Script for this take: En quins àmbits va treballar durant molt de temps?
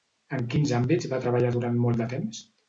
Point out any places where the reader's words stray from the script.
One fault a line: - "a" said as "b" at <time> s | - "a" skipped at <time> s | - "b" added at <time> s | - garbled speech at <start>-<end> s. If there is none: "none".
none